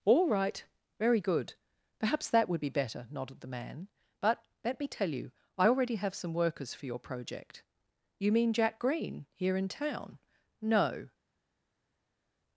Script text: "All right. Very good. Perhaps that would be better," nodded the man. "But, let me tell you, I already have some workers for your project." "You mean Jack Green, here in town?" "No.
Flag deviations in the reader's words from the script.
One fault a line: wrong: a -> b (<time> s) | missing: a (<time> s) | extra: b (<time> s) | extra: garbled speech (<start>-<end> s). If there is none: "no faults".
no faults